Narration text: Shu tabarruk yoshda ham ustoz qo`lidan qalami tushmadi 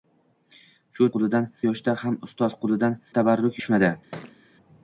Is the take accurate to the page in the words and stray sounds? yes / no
no